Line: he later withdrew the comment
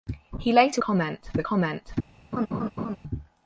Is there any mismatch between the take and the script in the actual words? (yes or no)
yes